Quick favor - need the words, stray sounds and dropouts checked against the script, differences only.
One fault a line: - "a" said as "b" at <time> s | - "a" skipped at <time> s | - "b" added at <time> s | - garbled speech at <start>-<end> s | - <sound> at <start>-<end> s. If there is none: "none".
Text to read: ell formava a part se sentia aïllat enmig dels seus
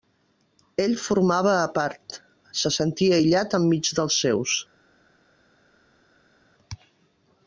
none